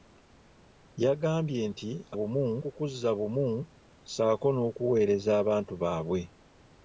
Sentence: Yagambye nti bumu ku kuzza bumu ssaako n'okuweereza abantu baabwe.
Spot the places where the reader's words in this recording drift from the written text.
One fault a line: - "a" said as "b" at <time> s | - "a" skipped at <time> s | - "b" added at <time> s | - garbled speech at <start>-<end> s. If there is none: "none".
none